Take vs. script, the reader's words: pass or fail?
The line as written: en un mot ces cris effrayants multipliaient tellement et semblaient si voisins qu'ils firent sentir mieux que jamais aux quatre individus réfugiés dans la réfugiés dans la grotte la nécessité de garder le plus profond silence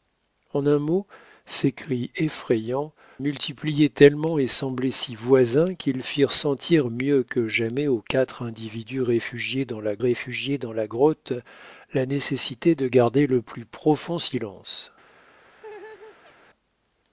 pass